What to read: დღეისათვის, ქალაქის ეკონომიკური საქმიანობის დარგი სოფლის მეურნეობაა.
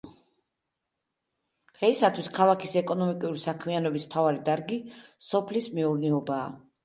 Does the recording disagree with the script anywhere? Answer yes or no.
yes